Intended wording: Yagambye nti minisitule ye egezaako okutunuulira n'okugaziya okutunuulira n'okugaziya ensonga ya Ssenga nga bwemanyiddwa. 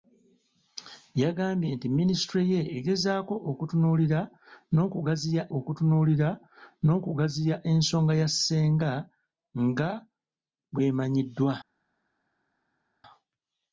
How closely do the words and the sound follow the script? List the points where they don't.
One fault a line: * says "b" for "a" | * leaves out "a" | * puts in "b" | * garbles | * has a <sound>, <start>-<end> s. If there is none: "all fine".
all fine